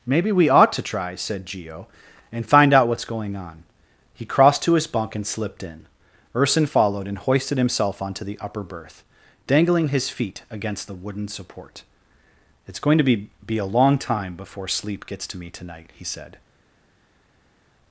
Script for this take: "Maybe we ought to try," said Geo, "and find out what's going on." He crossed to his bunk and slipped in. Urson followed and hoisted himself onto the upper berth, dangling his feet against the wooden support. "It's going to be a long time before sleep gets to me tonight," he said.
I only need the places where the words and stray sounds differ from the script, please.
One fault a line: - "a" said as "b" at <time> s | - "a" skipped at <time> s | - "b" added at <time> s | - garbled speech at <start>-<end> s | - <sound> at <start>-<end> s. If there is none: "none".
- "be" added at 13.4 s